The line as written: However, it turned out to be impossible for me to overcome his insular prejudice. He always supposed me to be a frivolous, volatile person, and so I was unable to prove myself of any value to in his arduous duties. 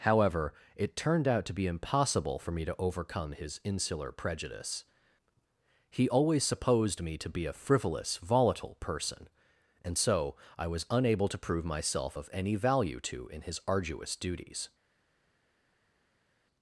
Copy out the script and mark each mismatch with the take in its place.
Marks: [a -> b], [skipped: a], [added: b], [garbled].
However, it turned out to be impossible for me to overcome his insular prejudice. He always supposed me to be a frivolous, volatile person, and so I was unable to prove myself of any value to in his arduous duties.